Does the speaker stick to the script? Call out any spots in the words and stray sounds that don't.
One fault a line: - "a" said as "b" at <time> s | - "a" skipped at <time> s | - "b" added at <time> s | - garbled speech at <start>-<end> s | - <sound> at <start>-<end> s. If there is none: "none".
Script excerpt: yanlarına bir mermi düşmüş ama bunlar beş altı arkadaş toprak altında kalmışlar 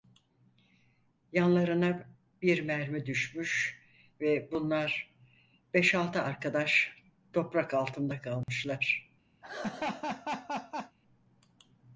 - "ama" said as "ve" at 4.2 s
- dropout at 8.4-8.5 s
- laugh at 9.4-11.0 s